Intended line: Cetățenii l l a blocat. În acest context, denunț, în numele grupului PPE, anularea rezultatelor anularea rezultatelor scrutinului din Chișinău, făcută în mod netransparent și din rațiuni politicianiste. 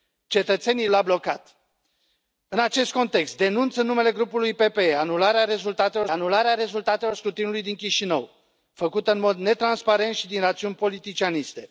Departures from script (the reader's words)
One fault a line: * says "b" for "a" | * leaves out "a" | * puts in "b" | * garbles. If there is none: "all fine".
all fine